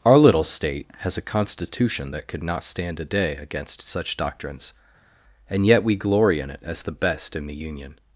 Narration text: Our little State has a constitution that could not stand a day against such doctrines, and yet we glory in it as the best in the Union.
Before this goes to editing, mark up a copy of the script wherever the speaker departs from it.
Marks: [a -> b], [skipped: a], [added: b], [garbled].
Our little State has a constitution that could not stand a day against such doctrines, and yet we glory in it as the best in the Union.